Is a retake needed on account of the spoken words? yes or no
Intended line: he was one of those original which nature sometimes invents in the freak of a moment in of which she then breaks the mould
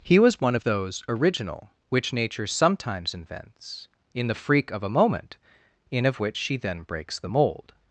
no